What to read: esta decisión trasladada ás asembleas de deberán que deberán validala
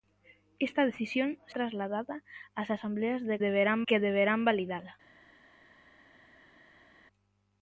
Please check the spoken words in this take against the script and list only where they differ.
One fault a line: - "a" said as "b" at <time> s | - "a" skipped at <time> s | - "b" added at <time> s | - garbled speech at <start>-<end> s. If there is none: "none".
none